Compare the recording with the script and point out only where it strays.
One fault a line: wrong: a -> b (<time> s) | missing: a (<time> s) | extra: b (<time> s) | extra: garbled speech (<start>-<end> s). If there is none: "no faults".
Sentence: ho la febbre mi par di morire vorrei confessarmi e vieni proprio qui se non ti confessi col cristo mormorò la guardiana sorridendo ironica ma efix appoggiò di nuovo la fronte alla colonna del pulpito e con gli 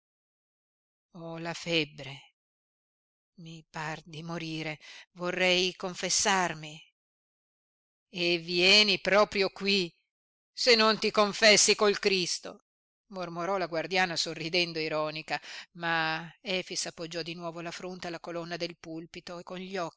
no faults